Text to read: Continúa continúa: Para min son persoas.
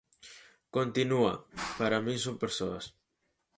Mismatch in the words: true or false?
true